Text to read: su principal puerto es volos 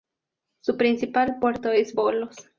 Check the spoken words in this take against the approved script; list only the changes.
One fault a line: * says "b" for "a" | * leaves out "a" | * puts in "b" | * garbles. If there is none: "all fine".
all fine